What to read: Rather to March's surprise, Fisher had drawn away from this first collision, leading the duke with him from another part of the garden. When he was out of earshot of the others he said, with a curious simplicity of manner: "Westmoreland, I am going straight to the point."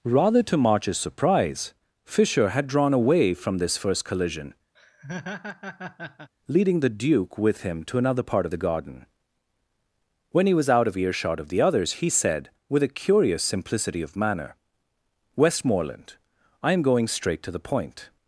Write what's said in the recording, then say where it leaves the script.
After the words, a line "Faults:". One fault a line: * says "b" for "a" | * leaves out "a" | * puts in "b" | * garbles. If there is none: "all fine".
Rather to March's surprise, Fisher had drawn away from this first collision, leading the duke with him to another part of the garden. When he was out of earshot of the others he said, with a curious simplicity of manner: "Westmoreland, I am going straight to the point."
Faults:
* says "to" for "from"